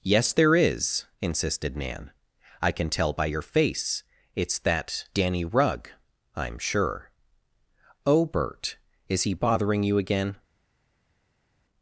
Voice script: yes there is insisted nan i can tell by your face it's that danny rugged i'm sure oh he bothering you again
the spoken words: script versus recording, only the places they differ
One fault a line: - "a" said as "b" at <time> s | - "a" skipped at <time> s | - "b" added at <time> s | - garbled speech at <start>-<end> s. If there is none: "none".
- "rugged" said as "rugg" at 5.5 s
- "bert is" added at 8.2 s